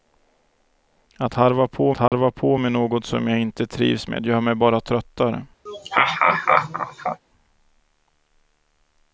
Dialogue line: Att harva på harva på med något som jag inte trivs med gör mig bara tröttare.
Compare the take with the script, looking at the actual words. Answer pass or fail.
pass